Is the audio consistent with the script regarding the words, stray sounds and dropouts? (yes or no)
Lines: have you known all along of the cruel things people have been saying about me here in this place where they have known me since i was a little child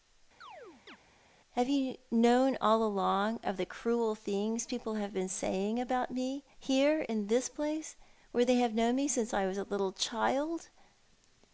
no